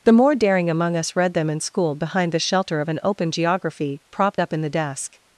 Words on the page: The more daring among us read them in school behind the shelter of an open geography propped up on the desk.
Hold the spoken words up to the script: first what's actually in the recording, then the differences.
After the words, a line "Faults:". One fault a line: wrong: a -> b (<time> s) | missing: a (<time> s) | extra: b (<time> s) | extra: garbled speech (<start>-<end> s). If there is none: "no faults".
The more daring among us read them in school behind the shelter of an open geography propped up in the desk.
Faults:
wrong: on -> in (4.5 s)